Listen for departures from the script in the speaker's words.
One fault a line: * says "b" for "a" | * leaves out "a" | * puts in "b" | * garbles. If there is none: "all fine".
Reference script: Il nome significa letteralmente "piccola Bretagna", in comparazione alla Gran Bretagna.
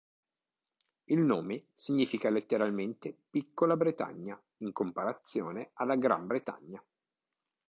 all fine